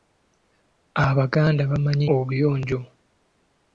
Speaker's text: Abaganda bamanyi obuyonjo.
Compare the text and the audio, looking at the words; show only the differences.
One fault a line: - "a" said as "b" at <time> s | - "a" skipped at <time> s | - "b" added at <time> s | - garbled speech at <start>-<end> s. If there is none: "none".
none